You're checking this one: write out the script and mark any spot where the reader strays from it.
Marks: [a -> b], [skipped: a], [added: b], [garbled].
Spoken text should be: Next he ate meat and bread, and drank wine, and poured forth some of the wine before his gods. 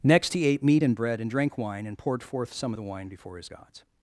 Next he ate meat and bread, and drank wine, and poured forth some of the wine before his gods.